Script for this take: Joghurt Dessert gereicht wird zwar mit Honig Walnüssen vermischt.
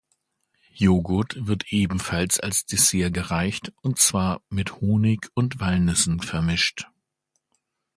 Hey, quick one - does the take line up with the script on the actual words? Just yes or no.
no